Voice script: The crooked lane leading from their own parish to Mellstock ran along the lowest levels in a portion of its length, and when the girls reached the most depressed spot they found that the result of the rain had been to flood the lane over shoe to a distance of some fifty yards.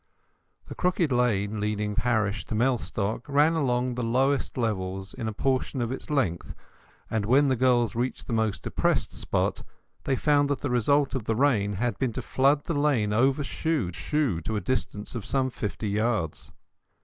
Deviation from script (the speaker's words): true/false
true